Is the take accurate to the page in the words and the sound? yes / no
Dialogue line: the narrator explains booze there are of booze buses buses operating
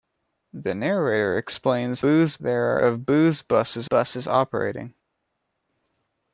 yes